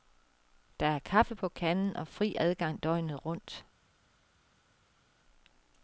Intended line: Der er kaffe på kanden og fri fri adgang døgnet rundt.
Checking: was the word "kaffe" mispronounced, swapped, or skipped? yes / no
no